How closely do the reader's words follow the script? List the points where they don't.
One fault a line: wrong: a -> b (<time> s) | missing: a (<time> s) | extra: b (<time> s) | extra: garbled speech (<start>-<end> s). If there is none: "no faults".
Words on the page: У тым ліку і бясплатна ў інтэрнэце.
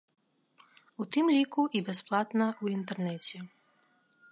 no faults